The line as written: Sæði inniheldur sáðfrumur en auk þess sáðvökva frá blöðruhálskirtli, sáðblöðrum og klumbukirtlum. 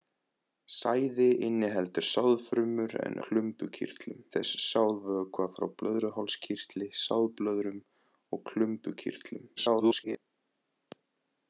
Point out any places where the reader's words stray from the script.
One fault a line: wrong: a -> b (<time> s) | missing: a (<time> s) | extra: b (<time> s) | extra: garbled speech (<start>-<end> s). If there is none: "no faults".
wrong: auk -> klumbukirtlum (3.3 s)
extra: garbled speech (9.6-10.2 s)